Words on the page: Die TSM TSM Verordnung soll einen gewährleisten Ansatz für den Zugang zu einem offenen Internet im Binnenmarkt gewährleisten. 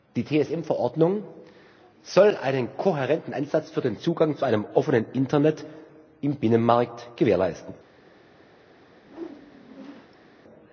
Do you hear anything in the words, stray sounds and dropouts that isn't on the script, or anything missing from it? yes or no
yes